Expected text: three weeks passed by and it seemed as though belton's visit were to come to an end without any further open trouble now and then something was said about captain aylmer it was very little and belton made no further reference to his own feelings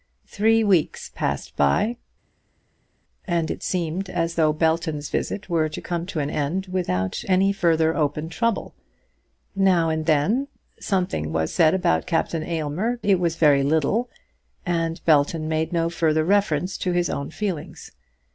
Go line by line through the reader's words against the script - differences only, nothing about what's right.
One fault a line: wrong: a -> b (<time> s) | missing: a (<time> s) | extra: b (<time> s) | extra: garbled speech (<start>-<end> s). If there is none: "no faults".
no faults